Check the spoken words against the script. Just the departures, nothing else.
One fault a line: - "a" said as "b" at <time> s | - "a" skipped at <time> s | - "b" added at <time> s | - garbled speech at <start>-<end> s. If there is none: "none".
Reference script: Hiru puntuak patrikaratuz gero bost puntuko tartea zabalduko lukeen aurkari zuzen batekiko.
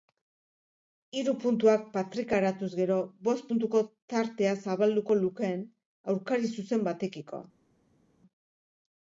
none